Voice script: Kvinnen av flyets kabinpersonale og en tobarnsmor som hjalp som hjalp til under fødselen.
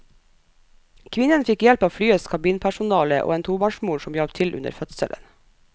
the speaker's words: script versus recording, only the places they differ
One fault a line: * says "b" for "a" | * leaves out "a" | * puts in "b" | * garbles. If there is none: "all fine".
* puts in "fikk hjelp"
* leaves out "som hjalp"